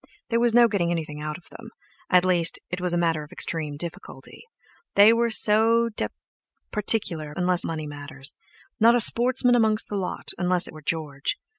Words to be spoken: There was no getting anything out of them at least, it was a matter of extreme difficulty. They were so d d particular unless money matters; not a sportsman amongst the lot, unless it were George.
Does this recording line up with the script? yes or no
yes